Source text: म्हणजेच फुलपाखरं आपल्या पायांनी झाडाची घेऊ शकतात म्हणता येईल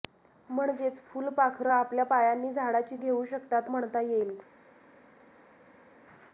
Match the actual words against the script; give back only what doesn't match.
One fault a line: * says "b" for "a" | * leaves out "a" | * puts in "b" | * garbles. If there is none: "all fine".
all fine